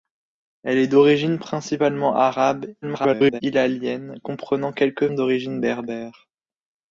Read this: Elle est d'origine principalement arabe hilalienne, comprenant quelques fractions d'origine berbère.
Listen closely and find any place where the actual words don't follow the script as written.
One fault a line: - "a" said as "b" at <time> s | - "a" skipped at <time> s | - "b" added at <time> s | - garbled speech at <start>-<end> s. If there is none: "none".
- garbled speech at 2.8-3.4 s
- "fractions" skipped at 5.1 s